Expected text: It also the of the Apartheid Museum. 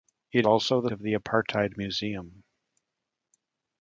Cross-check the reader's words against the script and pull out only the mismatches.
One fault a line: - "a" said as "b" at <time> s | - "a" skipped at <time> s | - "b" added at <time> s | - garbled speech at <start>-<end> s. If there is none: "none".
none